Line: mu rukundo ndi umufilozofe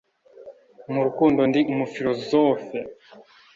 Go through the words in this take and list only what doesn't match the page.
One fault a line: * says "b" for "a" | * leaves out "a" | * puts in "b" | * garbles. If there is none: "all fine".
all fine